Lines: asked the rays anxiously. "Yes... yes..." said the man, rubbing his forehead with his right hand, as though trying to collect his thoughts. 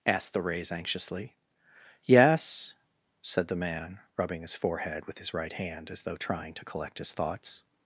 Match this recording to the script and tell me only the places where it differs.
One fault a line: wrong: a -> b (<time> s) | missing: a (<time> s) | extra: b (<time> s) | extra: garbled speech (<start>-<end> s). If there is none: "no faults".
missing: yes (2.7 s)